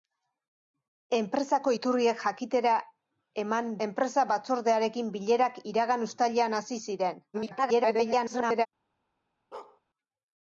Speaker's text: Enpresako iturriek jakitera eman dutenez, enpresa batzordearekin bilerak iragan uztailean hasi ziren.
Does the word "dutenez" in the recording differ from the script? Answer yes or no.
yes